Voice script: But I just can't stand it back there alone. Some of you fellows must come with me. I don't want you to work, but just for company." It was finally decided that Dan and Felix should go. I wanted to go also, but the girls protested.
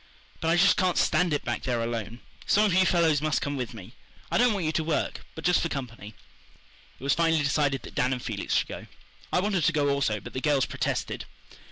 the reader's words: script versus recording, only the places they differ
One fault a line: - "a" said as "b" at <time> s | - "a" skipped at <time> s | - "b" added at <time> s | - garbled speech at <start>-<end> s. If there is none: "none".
none